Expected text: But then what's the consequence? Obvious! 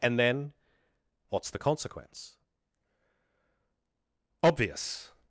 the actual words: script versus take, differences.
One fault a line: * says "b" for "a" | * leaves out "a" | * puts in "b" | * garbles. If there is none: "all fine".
* says "And" for "But"